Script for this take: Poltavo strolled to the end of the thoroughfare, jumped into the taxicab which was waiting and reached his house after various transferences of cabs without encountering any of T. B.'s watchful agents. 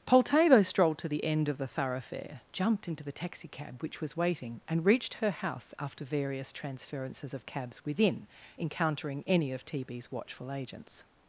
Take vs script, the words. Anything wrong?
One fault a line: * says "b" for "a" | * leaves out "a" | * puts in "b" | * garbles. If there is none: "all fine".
* says "her" for "his"
* says "within" for "without"